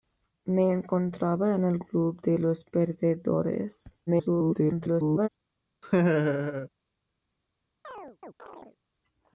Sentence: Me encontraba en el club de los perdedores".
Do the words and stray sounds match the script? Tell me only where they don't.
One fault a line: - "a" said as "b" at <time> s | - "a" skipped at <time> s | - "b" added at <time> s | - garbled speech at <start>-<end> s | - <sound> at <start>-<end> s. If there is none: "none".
- garbled speech at 4.1-5.3 s
- laugh at 5.8-6.7 s
- chirp at 7.8-8.8 s